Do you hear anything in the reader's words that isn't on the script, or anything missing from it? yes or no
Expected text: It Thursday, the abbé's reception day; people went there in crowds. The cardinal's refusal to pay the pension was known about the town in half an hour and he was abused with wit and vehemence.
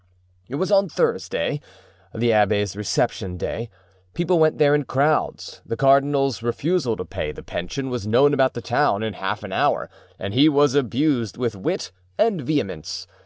yes